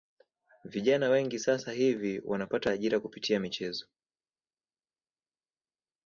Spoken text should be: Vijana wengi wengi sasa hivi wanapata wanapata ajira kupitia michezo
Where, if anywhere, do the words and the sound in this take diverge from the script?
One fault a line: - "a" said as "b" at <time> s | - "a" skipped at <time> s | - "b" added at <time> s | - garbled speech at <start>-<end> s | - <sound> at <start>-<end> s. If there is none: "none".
- "wengi" skipped at 1.4 s
- "wanapata" skipped at 2.7 s